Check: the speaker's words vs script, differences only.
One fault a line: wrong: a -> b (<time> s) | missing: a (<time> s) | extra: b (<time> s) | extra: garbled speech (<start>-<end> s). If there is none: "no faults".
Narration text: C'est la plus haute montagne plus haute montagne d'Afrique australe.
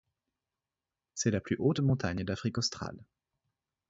missing: plus haute montagne (2.2 s)